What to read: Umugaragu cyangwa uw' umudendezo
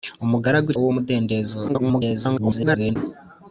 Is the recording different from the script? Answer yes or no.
yes